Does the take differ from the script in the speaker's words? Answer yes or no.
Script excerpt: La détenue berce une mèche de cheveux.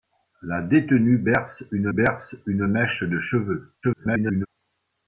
yes